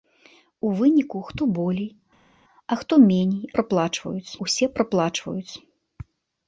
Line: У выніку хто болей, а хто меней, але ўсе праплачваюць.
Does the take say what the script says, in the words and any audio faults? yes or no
no